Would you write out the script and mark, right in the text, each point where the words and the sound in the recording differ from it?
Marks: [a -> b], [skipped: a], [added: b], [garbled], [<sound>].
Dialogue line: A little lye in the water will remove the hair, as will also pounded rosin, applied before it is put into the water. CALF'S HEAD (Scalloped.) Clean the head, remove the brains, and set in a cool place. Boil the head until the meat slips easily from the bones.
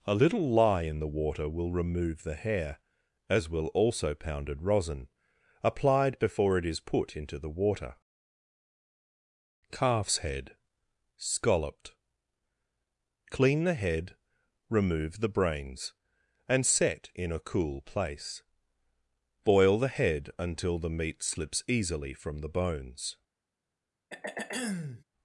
A little lye in the water will remove the hair, as will also pounded rosin, applied before it is put into the water. CALF'S HEAD (Scalloped.) Clean the head, remove the brains, and set in a cool place. Boil the head until the meat slips easily from the bones. [throat clearing]